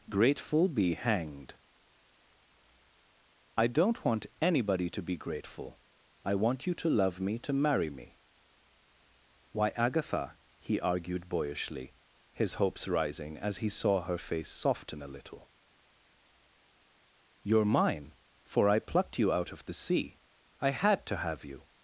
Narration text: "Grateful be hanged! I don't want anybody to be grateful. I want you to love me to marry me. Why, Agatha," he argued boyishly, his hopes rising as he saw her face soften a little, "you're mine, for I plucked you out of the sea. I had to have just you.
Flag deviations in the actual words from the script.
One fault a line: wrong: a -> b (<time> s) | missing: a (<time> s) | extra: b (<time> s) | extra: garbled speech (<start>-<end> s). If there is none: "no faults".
missing: just (21.4 s)